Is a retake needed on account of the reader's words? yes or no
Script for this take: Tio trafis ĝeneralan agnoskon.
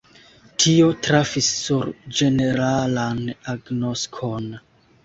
yes